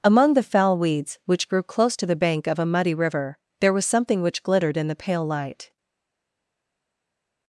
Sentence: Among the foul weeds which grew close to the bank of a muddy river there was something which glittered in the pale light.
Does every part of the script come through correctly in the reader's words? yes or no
yes